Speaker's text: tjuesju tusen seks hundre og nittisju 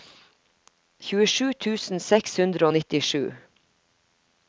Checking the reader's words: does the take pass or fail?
pass